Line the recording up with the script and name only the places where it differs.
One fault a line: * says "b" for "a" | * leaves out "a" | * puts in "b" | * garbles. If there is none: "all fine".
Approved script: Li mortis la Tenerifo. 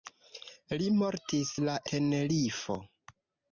all fine